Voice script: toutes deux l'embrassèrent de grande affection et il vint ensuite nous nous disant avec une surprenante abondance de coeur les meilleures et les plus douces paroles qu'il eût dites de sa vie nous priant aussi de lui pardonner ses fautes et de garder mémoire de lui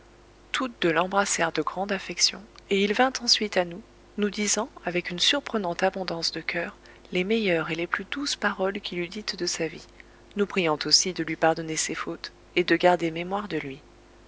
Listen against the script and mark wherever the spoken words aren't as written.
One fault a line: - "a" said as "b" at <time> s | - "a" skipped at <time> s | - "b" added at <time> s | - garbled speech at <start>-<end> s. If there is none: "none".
- "à" added at 3.5 s